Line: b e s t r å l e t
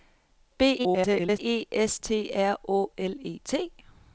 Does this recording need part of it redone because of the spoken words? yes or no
yes